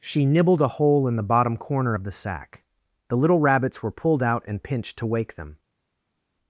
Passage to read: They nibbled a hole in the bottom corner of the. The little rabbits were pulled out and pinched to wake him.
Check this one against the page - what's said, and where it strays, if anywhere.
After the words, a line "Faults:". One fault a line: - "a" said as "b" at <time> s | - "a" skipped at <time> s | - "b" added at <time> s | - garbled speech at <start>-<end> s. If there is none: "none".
She nibbled a hole in the bottom corner of the sack. The little rabbits were pulled out and pinched to wake them.
Faults:
- "They" said as "She" at 0.0 s
- "sack" added at 2.1 s
- "him" said as "them" at 5.3 s